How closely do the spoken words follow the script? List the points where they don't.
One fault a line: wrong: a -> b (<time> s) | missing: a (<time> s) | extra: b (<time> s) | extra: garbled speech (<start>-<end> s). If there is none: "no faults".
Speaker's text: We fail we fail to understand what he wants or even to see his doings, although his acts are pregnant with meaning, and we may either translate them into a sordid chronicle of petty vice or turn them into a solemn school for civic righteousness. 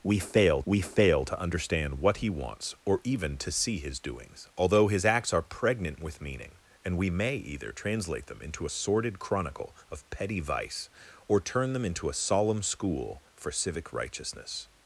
no faults